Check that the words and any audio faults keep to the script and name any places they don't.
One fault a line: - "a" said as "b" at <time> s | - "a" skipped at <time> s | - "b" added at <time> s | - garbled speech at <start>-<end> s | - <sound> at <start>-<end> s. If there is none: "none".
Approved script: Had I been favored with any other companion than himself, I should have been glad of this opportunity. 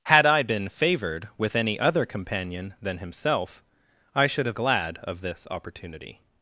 - "been" skipped at 4.6 s